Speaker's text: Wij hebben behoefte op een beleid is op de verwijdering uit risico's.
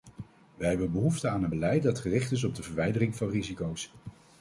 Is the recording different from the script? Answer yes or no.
yes